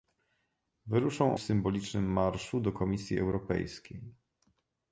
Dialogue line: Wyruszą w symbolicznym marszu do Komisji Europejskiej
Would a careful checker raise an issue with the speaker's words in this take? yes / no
no